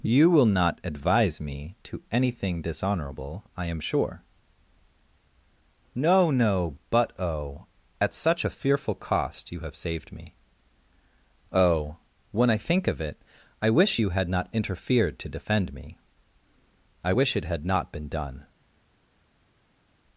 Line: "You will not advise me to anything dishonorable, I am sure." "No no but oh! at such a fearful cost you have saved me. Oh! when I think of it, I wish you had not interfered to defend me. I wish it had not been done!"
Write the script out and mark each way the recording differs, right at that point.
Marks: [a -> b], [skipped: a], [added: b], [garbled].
"You will not advise me to anything dishonorable, I am sure." "No no but oh! at such a fearful cost you have saved me. Oh! when I think of it, I wish you had not interfered to defend me. I wish it had not been done!"